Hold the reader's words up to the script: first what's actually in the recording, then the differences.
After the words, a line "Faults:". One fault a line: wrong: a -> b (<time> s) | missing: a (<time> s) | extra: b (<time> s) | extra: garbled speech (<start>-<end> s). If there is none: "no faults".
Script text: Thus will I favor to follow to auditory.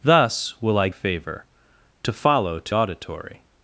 Thus will I favor to follow to auditory.
Faults:
no faults